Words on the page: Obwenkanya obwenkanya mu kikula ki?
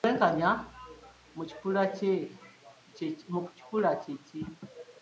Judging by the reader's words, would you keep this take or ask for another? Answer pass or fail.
fail